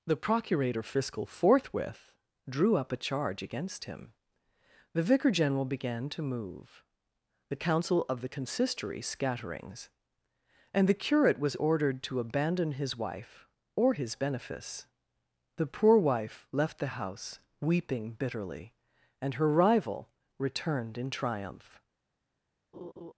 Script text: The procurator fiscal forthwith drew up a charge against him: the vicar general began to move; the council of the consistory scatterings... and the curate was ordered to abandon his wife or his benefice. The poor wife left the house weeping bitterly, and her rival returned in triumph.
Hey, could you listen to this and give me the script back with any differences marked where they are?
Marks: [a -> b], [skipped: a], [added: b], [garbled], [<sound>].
The procurator fiscal forthwith drew up a charge against him: the vicar general began to move; the council of the consistory scatterings... and the curate was ordered to abandon his wife or his benefice. The poor wife left the house weeping bitterly, and her rival returned in triumph. [laugh]